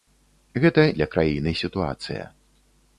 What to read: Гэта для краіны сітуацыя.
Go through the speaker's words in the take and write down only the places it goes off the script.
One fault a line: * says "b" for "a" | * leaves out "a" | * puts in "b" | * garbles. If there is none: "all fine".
all fine